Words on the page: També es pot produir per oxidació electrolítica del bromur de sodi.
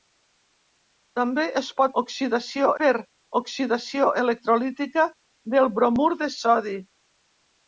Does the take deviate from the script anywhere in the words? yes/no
yes